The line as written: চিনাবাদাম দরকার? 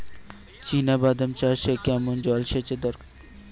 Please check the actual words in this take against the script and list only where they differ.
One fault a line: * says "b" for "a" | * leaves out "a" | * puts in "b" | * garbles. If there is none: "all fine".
* puts in "চাষে কেমন জলসেচের"